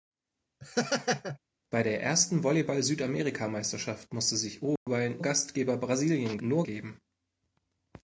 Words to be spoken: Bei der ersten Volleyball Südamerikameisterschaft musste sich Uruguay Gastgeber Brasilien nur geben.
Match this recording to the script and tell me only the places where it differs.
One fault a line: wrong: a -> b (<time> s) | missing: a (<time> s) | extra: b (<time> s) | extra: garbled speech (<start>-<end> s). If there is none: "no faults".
no faults